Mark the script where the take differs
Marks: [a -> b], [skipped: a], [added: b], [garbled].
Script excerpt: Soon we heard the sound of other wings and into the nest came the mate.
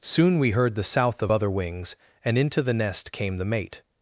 Soon we heard the [sound -> south] of other wings and into the nest came the mate.